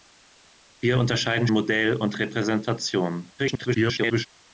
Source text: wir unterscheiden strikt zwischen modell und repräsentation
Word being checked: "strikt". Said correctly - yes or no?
no